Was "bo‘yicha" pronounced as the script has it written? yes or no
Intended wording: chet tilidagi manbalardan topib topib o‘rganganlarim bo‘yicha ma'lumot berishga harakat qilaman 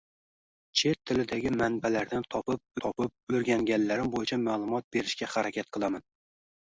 yes